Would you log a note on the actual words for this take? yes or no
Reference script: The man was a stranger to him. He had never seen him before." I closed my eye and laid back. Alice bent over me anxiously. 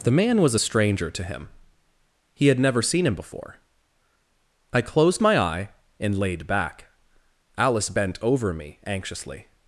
no